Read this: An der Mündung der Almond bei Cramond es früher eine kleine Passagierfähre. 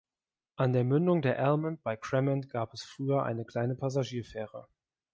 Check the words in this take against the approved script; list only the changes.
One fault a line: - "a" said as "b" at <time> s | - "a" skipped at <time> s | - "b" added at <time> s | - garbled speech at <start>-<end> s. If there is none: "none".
- "gab" added at 2.5 s